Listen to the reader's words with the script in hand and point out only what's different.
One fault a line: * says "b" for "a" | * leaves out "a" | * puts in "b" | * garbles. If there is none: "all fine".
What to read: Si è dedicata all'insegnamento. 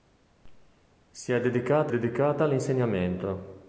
* puts in "dedicata"